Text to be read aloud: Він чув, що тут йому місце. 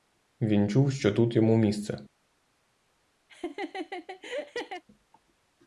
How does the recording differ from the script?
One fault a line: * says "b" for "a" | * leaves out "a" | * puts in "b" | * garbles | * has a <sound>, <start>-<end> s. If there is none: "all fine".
* has a laugh, 3.3-4.8 s